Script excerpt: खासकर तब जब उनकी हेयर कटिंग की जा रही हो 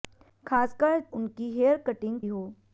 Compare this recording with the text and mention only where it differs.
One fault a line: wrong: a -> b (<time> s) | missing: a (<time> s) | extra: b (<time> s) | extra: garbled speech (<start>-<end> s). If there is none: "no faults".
missing: तब जब (1.0 s)
missing: की जा रही (2.2 s)